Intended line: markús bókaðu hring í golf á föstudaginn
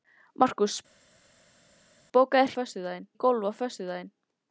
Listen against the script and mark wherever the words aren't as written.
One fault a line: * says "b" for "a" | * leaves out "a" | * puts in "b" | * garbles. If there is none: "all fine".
* says "föstudaginn" for "hring"